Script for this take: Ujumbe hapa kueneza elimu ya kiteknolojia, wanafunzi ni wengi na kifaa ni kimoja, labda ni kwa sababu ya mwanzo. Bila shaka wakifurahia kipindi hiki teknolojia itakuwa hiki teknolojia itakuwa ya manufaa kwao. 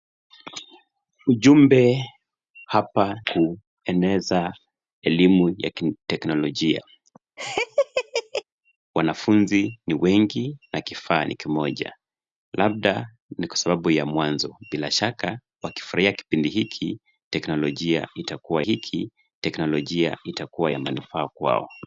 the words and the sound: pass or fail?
fail